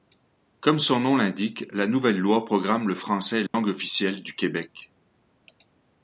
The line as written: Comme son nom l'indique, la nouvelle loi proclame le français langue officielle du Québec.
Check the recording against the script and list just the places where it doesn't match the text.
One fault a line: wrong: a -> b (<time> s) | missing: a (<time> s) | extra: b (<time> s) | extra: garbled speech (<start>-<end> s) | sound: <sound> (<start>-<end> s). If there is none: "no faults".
sound: dropout (3.5-3.5 s)